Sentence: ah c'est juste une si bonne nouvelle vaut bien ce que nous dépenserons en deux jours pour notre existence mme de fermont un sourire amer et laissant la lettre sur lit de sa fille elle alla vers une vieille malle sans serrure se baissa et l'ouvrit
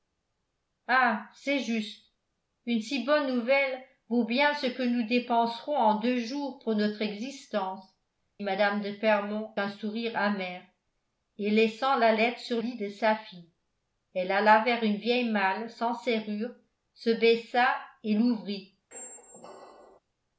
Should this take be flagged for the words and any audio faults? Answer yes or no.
yes